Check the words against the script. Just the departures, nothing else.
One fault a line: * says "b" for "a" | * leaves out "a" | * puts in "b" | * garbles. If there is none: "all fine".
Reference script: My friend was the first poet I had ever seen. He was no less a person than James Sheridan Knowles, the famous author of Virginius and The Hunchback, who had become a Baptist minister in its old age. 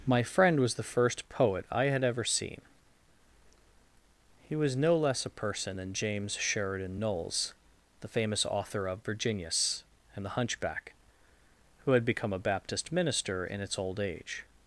all fine